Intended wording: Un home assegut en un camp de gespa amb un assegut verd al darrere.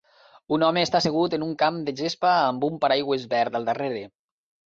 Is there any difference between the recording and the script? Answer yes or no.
yes